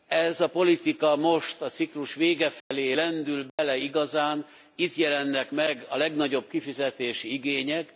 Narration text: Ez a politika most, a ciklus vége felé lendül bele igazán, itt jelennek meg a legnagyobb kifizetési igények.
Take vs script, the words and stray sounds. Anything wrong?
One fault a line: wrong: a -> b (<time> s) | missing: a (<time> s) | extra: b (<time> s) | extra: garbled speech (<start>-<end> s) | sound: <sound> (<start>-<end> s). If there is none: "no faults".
sound: dropout (2.6-2.7 s)
sound: dropout (3.5-3.6 s)